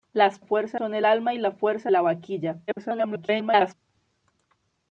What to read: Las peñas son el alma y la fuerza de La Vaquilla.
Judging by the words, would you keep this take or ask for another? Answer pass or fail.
fail